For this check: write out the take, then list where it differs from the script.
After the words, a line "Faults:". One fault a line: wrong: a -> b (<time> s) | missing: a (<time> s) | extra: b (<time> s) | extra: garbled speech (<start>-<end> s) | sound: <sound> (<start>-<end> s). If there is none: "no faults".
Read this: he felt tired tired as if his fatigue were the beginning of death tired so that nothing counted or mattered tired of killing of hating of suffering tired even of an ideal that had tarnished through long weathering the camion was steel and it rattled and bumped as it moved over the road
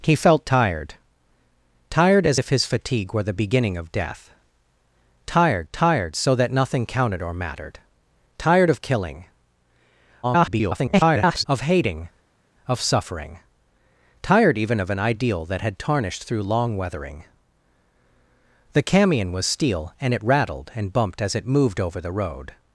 he felt tired tired as if his fatigue were the beginning of death tired tired so that nothing counted or mattered tired of killing [garbled] of hating of suffering tired even of an ideal that had tarnished through long weathering the camion was steel and it rattled and bumped as it moved over the road
Faults:
extra: tired (5.7 s)
extra: garbled speech (10.2-11.4 s)